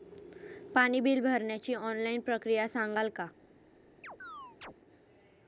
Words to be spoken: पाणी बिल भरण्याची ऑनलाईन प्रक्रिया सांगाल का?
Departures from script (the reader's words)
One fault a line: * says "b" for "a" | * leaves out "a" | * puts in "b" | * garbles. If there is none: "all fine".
all fine